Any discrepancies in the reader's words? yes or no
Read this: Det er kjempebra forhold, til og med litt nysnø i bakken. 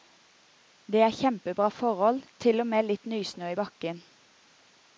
no